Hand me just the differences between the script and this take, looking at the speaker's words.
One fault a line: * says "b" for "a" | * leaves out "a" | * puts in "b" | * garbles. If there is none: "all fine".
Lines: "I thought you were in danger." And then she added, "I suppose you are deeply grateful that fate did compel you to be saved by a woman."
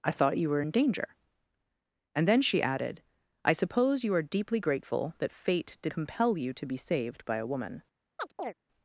all fine